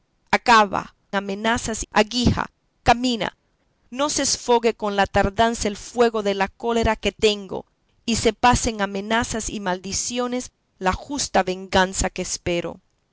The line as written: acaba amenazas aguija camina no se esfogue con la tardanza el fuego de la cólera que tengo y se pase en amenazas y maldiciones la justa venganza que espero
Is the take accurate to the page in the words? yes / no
yes